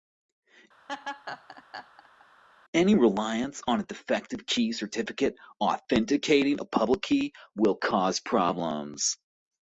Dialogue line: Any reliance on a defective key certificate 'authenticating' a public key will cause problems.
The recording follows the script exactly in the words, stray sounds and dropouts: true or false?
false